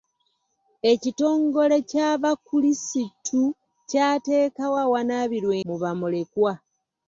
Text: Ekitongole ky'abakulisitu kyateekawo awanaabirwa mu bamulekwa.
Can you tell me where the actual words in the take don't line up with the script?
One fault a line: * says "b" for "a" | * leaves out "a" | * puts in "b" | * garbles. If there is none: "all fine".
all fine